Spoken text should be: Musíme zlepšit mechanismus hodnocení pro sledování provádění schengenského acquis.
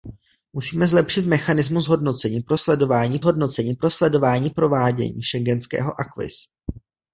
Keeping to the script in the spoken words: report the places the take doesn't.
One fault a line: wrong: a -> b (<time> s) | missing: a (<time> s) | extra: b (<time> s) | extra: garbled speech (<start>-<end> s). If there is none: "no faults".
extra: hodnocení pro sledování (3.2 s)